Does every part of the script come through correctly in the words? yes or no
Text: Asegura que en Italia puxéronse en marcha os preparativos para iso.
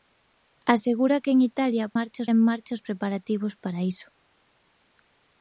no